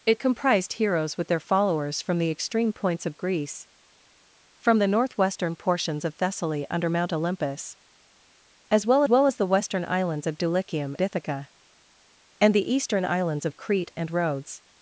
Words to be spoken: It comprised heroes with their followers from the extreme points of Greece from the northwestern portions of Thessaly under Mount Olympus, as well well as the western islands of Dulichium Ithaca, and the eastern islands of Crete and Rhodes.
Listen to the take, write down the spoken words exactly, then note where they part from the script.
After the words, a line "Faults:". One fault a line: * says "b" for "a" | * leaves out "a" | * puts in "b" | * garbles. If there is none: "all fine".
It comprised heroes with their followers from the extreme points of Greece from the northwestern portions of Thessaly under Mount Olympus, as well well as the western islands of Dulichium Ithaca, and the eastern islands of Crete and Rhodes.
Faults:
all fine